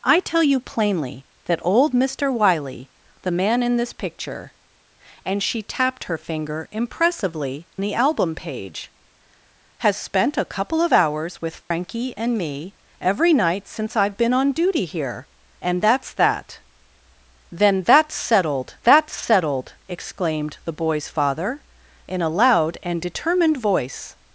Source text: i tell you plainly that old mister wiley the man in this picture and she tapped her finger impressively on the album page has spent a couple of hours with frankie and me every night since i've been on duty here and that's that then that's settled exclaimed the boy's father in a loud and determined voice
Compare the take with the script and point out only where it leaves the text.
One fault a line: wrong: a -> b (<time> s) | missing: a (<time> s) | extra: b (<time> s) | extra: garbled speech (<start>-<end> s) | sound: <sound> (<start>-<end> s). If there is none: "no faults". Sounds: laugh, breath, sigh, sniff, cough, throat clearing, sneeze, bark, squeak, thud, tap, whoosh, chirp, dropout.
missing: on (7.7 s)
sound: dropout (11.6-11.7 s)
extra: that's settled (18.8 s)